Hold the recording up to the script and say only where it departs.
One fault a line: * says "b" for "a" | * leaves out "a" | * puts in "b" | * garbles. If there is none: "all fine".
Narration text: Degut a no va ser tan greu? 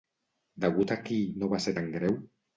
* puts in "qui"